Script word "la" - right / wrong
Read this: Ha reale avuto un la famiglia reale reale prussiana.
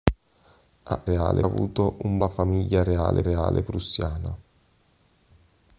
right